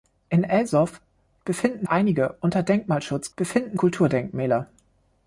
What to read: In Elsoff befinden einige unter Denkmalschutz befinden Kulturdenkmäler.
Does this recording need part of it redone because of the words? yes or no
no